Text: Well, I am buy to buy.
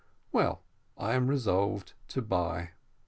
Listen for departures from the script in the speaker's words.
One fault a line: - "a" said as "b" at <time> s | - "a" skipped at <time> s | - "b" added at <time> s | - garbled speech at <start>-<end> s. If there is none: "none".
- "buy" said as "resolved" at 1.3 s